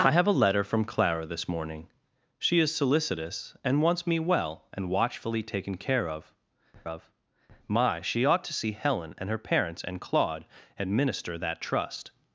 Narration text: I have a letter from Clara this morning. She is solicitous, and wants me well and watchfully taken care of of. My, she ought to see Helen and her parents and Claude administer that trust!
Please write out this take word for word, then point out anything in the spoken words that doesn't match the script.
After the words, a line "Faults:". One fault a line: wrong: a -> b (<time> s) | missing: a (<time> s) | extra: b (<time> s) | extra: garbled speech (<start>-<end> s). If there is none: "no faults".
I have a letter from Clara this morning. She is solicitous, and wants me well and watchfully taken care of of. My, she ought to see Helen and her parents and Claude administer that trust!
Faults:
no faults